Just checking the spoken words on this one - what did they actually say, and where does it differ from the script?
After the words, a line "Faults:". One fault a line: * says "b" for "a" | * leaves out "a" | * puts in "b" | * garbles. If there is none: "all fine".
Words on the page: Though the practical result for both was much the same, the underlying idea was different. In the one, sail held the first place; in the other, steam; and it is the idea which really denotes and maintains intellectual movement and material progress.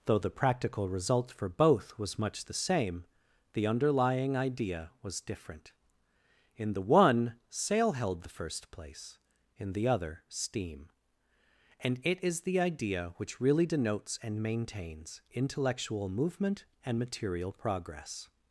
Though the practical result for both was much the same, the underlying idea was different. In the one, sail held the first place; in the other, steam; and it is the idea which really denotes and maintains intellectual movement and material progress.
Faults:
all fine